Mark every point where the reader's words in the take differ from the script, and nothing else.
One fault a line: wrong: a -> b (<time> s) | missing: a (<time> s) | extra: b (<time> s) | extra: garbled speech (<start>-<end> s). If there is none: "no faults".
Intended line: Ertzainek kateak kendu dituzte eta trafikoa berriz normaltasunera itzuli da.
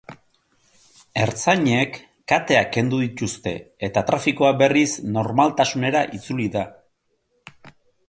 no faults